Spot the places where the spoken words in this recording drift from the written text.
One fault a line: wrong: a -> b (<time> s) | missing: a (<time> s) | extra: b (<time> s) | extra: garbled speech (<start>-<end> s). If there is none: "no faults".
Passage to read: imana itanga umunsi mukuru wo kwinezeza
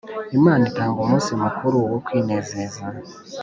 no faults